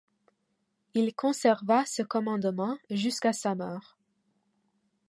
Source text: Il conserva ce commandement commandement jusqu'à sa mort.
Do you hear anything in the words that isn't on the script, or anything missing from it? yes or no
yes